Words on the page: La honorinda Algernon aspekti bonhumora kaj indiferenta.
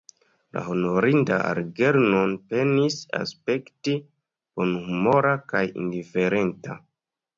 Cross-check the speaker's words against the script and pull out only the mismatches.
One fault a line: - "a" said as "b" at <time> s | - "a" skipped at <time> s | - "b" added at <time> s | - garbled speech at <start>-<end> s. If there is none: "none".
- "penis" added at 2.5 s